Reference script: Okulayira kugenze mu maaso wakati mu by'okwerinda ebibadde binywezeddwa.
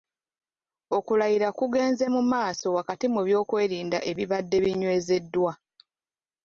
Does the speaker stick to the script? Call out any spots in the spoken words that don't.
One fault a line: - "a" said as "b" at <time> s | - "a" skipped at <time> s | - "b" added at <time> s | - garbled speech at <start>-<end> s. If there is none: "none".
none